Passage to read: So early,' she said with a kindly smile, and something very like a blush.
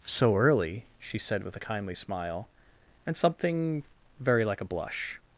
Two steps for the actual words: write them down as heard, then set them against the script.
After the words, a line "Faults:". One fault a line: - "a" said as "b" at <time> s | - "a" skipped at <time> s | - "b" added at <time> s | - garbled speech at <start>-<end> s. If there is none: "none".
So early,' she said with a kindly smile, and something very like a blush.
Faults:
none